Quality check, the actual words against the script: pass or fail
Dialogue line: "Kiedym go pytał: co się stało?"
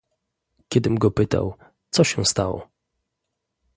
pass